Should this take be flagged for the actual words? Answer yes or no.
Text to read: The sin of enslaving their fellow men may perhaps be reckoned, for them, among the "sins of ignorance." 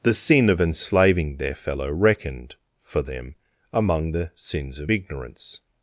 yes